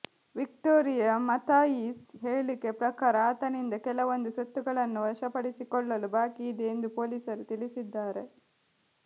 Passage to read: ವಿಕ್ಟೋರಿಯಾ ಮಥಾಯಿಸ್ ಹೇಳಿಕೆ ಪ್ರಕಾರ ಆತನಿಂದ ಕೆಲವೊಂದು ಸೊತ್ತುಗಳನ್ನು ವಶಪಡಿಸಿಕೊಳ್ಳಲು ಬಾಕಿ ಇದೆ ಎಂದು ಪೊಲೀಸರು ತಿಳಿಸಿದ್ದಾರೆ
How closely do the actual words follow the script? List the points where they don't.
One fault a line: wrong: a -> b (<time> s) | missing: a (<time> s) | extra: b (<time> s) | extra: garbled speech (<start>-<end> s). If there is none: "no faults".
no faults